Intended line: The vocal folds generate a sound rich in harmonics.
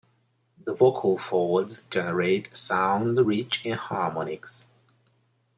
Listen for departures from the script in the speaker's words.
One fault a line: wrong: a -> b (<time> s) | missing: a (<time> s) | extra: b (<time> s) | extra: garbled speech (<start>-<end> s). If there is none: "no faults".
no faults